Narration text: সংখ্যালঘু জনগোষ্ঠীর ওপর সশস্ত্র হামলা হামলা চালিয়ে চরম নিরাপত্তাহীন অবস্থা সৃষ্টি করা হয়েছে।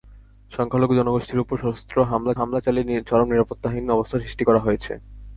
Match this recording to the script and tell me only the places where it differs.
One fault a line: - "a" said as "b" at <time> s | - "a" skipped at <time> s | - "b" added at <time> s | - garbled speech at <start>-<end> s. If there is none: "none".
none